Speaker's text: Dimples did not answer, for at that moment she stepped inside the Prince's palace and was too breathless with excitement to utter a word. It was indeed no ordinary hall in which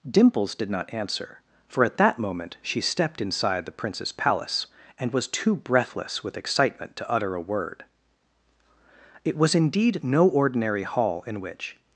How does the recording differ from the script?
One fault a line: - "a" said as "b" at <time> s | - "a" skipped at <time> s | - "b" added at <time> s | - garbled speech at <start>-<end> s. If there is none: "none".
none